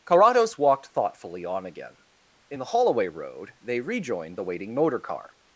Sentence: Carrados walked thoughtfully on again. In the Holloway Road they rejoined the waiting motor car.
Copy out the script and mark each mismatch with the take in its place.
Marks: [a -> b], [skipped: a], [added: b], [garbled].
Carrados walked thoughtfully on again. In the Holloway Road they rejoined the waiting motor car.